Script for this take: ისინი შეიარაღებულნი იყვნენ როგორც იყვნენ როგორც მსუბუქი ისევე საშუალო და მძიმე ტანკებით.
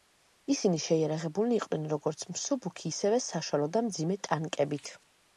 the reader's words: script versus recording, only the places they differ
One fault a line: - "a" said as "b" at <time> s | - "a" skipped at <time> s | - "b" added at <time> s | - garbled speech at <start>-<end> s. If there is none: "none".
- "იყვნენ როგორც" skipped at 2.2 s